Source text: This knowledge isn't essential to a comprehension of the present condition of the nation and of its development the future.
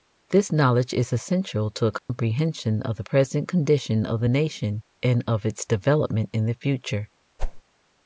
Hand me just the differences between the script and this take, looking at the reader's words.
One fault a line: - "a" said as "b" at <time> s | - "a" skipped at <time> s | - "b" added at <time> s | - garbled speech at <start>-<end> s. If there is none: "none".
- "isn't" said as "is" at 0.9 s
- "in" added at 6.3 s